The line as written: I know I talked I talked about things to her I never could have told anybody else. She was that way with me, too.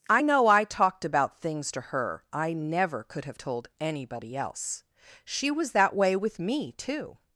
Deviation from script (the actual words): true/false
true